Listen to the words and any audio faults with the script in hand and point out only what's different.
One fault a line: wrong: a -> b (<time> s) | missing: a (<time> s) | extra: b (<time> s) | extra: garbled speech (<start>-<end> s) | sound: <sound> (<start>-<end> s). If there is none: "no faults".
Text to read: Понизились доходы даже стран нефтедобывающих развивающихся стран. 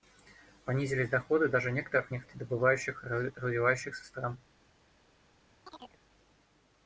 wrong: стран -> некоторых (1.7 s)
sound: chirp (5.7-6.0 s)